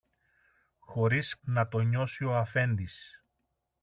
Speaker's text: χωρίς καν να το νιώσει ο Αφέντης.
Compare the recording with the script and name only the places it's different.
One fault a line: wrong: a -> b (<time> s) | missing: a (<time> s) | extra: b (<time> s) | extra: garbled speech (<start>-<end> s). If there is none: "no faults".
missing: καν (1.4 s)